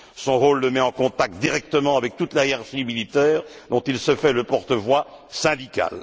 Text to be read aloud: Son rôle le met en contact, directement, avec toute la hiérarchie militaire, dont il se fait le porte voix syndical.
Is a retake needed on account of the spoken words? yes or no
no